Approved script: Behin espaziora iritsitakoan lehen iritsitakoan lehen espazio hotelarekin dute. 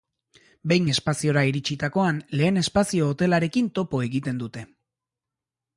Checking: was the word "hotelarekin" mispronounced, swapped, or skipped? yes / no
yes